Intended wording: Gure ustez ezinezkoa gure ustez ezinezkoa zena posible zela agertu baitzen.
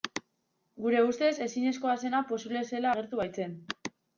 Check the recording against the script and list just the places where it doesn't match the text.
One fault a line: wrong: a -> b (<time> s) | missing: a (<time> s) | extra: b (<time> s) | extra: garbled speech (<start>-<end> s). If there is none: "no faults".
missing: gure ustez ezinezkoa (2.0 s)